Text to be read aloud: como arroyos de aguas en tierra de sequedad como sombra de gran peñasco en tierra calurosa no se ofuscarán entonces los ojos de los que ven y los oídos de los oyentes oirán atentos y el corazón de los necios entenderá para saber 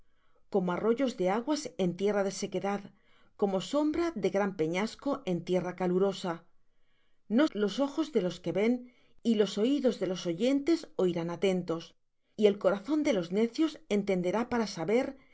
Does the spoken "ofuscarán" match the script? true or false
false